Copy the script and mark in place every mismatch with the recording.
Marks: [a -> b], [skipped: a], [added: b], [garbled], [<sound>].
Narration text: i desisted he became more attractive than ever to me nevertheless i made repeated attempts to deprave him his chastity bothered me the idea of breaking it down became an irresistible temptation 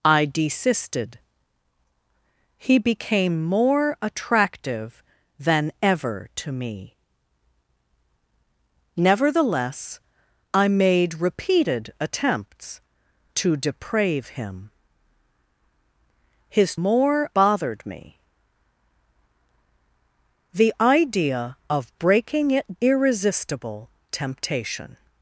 i desisted he became more attractive than ever to me nevertheless i made repeated attempts to deprave him his [chastity -> more] bothered me the idea of breaking it [skipped: down became an] irresistible temptation